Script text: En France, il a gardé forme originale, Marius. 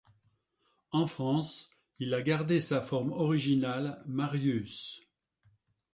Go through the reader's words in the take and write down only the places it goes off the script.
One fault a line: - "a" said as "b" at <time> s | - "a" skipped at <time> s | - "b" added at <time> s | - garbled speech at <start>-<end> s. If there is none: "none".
- "sa" added at 2.6 s